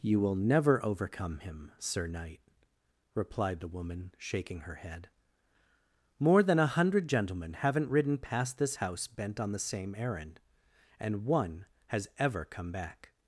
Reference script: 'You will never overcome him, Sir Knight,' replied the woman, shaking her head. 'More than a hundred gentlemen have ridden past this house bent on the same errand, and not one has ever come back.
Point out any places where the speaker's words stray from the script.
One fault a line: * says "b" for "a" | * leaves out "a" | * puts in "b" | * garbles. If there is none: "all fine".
* says "haven't" for "have"
* leaves out "not"